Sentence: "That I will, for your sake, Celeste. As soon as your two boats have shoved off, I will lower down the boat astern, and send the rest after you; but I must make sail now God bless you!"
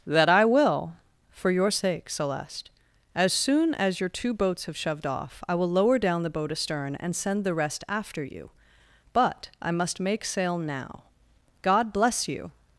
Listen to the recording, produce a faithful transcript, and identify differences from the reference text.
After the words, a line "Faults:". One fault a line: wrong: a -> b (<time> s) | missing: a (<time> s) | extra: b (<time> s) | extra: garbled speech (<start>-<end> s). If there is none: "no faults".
"That I will, for your sake, Celeste. As soon as your two boats have shoved off, I will lower down the boat astern, and send the rest after you; but I must make sail now God bless you!"
Faults:
no faults